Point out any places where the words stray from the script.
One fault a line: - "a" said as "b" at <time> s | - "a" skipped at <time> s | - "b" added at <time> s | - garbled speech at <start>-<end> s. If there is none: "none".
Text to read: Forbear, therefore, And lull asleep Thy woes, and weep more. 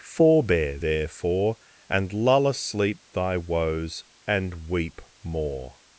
none